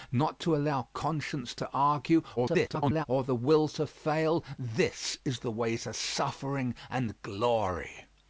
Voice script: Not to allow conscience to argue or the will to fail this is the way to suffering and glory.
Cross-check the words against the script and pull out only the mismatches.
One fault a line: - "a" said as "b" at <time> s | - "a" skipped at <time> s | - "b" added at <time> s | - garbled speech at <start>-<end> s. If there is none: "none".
- garbled speech at 2.4-3.1 s